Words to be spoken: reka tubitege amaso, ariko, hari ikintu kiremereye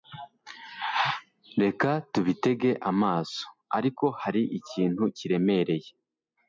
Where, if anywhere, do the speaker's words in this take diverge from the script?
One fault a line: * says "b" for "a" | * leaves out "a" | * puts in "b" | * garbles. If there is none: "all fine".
all fine